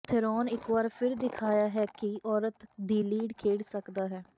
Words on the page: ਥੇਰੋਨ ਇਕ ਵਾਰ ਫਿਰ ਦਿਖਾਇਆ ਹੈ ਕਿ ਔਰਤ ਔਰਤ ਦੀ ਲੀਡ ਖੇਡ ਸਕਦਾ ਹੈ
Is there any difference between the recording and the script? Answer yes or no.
yes